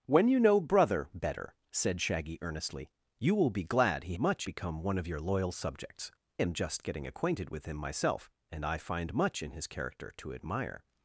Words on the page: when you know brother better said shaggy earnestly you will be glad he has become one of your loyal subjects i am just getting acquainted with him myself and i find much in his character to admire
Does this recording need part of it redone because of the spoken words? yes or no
yes